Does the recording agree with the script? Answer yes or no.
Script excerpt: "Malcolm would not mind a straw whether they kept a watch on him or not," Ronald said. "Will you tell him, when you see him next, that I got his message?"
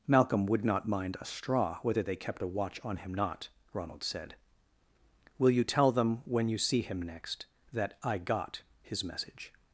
no